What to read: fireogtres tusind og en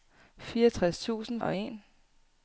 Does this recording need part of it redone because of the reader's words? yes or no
no